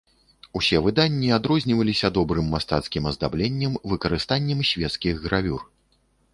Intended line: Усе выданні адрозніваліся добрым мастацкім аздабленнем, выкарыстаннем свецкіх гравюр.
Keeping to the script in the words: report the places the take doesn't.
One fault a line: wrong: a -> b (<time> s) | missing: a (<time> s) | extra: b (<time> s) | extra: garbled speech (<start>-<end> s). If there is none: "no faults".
no faults